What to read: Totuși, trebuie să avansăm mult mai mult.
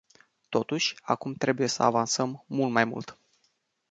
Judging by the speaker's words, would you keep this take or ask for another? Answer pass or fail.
fail